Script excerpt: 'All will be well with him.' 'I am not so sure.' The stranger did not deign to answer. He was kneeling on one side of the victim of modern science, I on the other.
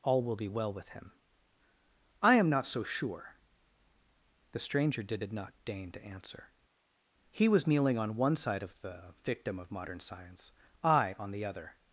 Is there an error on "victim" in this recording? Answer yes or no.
no